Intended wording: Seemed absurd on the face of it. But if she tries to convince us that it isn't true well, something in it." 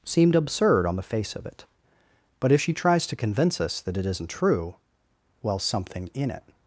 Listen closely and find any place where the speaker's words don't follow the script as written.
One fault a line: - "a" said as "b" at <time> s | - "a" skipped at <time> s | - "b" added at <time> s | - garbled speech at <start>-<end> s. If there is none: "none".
none